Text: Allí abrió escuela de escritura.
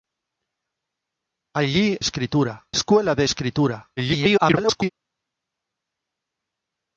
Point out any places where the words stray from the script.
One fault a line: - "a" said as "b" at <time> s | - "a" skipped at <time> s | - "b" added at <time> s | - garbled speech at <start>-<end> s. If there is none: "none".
- "abrió" said as "escritura" at 2.0 s
- garbled speech at 4.0-4.9 s